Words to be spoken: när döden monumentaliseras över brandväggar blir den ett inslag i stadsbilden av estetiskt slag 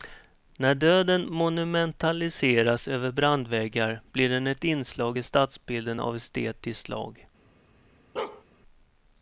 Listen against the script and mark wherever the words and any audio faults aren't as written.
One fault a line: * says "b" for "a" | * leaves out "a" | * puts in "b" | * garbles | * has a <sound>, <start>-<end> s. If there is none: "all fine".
* has a bark, 8.2-8.4 s